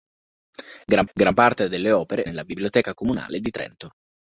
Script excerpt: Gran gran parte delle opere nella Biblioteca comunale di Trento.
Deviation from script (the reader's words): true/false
false